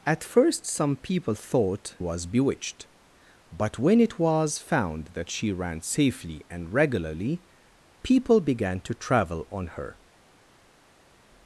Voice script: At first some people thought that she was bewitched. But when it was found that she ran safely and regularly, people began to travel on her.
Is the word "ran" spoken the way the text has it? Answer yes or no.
yes